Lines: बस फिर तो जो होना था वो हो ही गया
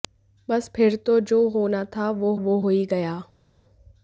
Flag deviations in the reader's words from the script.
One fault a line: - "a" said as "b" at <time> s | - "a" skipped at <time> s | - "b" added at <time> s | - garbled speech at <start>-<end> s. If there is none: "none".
- "वो" added at 2.3 s